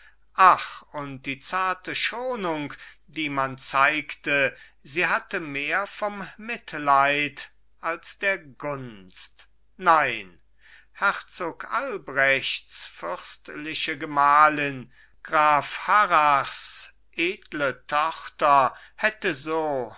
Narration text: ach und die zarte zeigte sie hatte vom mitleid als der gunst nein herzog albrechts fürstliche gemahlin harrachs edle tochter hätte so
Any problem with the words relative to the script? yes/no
yes